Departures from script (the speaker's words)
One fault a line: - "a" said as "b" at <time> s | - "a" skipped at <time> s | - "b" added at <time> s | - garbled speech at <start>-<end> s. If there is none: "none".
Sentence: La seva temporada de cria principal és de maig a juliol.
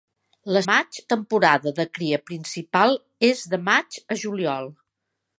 - "seva" said as "maig" at 0.7 s